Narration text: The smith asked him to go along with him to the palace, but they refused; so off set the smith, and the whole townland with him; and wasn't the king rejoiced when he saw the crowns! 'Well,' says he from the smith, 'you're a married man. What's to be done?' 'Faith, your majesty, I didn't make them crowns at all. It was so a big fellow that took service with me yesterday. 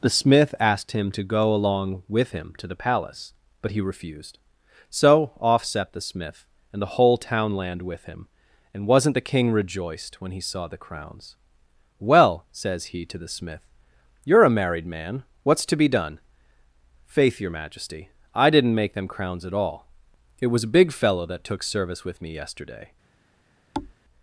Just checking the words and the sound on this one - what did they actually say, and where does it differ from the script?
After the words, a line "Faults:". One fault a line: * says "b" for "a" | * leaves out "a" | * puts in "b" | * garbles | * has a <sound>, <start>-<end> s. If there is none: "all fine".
The smith asked him to go along with him to the palace, but he refused; so off set the smith, and the whole townland with him; and wasn't the king rejoiced when he saw the crowns! 'Well,' says he to the smith, 'you're a married man. What's to be done?' 'Faith, your majesty, I didn't make them crowns at all. It was a big fellow that took service with me yesterday.
Faults:
* says "he" for "they"
* says "to" for "from"
* leaves out "so"
* has a thud, 23.7-23.9 s